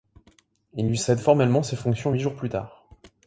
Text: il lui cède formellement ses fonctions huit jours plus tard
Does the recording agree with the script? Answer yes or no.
yes